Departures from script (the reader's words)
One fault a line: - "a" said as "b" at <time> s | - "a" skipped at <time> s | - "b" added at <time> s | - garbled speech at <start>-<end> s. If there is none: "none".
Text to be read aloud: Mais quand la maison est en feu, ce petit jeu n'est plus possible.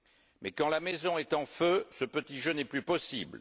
none